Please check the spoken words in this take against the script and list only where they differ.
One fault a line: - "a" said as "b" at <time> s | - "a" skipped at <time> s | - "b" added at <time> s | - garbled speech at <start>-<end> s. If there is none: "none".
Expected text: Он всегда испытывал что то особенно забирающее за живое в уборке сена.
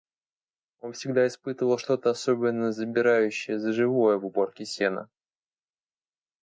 none